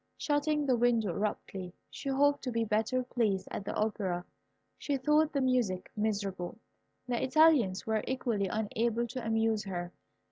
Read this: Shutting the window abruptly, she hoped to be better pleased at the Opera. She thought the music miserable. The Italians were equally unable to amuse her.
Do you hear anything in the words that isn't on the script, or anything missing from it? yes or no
no